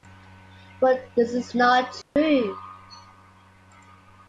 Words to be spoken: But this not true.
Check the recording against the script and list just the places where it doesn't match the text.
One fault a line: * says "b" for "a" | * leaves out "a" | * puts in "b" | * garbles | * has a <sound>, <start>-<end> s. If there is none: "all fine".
* puts in "is"
* has a dropout, 2.0-2.2 s